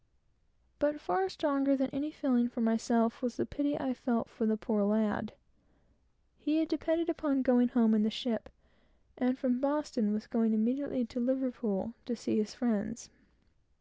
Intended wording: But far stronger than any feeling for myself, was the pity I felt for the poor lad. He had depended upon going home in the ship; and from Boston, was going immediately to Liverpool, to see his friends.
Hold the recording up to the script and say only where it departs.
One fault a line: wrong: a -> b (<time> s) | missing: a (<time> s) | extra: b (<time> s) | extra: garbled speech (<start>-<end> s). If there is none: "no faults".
no faults